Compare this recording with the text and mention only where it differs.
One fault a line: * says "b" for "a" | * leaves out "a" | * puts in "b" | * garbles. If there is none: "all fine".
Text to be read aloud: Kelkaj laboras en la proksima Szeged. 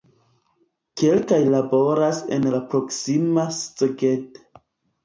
all fine